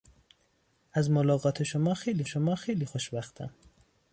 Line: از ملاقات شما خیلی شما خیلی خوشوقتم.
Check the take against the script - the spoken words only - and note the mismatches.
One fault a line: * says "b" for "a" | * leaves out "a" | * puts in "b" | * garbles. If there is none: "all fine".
all fine